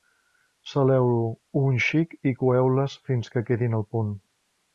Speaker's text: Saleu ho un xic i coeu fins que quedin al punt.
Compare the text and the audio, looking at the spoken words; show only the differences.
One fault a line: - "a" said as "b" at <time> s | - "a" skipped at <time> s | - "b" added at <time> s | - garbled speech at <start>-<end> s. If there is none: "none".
- "les" added at 2.8 s